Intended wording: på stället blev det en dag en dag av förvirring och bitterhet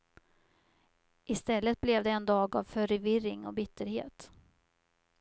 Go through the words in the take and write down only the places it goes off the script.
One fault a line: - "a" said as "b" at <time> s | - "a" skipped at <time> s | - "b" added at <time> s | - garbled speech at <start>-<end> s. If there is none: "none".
- "på" said as "i" at 1.2 s
- "en dag" skipped at 2.5 s